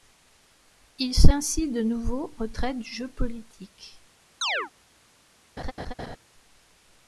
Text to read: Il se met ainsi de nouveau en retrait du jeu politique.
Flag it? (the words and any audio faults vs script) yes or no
yes